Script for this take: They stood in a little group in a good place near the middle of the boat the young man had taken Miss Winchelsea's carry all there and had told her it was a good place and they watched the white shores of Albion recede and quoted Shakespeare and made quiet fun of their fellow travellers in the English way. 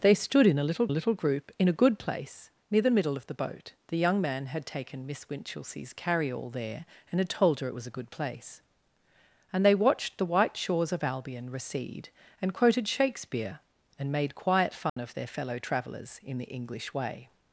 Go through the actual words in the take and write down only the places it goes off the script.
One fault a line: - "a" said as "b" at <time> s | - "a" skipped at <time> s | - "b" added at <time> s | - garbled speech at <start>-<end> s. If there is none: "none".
- "little" added at 0.9 s